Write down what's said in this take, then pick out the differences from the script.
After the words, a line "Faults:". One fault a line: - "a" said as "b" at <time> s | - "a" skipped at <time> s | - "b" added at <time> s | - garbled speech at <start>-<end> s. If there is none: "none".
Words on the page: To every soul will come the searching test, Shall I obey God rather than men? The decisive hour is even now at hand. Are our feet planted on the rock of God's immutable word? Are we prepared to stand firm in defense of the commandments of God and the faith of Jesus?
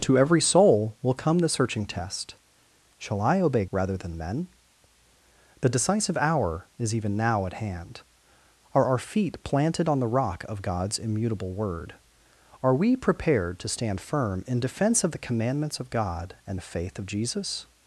To every soul will come the searching test, Shall I obey Rather than men? The decisive hour is even now at hand. Are our feet planted on the rock of God's immutable word? Are we prepared to stand firm in defense of the commandments of God and the faith of Jesus?
Faults:
- "God" skipped at 3.6 s